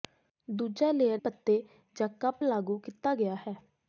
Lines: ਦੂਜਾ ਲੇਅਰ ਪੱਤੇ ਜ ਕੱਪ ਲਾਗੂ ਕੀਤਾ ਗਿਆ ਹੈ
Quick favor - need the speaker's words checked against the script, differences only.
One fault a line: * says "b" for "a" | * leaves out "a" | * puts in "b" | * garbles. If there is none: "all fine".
all fine